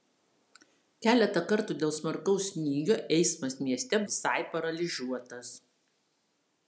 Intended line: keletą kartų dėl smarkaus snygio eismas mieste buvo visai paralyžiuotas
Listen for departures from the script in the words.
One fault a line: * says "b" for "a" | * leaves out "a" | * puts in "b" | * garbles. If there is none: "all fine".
* leaves out "buvo"